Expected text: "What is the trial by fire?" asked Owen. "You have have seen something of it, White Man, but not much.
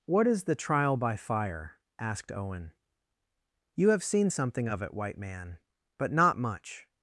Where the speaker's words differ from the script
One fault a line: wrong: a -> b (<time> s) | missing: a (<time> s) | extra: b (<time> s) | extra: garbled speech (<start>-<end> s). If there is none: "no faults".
missing: have (4.0 s)